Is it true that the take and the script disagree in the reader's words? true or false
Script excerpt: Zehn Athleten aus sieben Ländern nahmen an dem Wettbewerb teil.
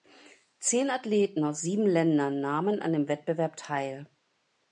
false